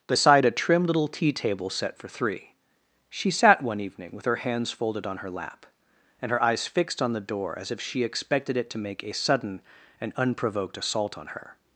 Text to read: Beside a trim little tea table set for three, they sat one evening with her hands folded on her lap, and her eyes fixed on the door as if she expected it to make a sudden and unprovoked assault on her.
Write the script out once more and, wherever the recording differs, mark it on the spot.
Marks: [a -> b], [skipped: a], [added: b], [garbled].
Beside a trim little tea table set for three, [they -> she] sat one evening with her hands folded on her lap, and her eyes fixed on the door as if she expected it to make a sudden and unprovoked assault on her.